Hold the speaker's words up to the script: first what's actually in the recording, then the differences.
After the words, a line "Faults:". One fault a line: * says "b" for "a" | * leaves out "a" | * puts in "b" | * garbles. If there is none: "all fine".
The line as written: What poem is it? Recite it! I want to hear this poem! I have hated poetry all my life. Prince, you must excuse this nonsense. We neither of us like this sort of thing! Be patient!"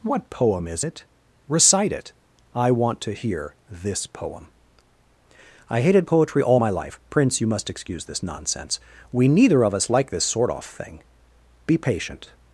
What poem is it? Recite it! I want to hear this poem! I hated poetry all my life. Prince, you must excuse this nonsense. We neither of us like this sort off thing! Be patient!"
Faults:
* leaves out "have"
* says "off" for "of"